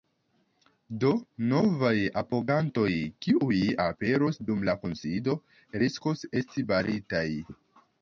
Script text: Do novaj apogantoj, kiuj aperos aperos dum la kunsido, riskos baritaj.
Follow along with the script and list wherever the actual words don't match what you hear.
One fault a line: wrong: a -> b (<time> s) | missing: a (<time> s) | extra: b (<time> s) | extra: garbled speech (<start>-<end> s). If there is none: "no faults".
missing: aperos (4.4 s)
extra: esti (6.4 s)